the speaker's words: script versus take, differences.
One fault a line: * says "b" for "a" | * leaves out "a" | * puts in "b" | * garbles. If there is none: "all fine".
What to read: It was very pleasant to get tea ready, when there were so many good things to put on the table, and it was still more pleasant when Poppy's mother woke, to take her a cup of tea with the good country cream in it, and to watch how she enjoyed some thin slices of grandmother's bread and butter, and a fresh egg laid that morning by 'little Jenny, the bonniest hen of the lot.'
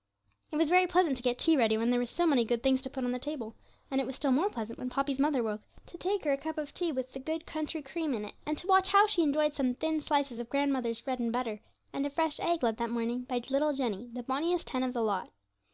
all fine